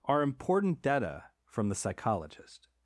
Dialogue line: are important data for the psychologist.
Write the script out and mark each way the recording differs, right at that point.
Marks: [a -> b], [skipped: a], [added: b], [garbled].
are important data [for -> from] the psychologist.